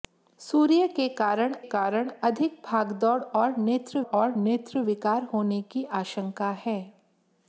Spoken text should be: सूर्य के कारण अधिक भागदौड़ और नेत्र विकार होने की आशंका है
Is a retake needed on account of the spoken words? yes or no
yes